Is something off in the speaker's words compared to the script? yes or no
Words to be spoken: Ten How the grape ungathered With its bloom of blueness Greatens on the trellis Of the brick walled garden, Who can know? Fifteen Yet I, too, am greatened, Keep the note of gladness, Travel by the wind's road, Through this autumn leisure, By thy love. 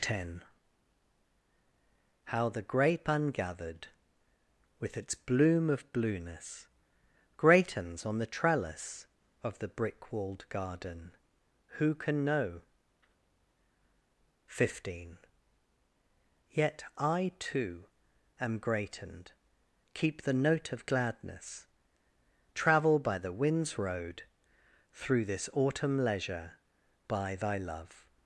no